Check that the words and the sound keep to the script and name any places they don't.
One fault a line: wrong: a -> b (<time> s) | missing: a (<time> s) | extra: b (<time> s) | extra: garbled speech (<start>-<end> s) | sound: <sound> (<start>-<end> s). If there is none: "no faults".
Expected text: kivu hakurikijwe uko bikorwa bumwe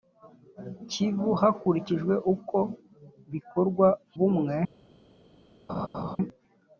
sound: laugh (5.7-6.2 s)